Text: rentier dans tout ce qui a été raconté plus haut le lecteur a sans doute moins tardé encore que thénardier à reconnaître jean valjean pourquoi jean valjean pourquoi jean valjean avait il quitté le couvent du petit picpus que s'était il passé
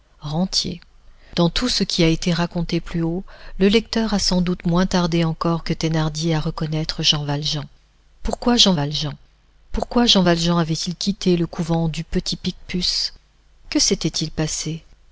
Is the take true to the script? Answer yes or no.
yes